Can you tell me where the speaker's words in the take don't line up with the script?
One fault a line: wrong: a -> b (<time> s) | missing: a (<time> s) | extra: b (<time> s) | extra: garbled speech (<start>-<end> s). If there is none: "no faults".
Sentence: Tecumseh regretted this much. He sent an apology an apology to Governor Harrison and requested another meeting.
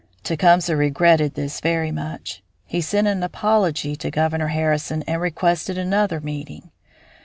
extra: very (1.6 s)
missing: an apology (4.0 s)